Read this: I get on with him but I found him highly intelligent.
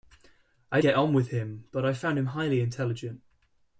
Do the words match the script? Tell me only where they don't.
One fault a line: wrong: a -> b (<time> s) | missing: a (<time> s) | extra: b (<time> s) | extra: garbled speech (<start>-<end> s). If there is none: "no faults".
no faults